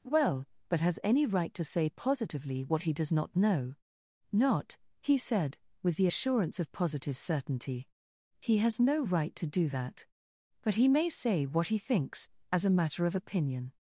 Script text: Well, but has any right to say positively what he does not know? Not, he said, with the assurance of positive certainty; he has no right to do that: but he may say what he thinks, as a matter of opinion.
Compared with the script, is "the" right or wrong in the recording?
right